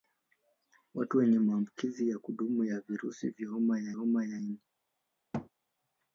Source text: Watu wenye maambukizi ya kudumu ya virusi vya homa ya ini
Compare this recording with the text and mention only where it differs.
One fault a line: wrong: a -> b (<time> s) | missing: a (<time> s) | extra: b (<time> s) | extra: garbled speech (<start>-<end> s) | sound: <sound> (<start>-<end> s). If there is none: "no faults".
extra: homa ya (3.9 s)
sound: thud (5.3-5.5 s)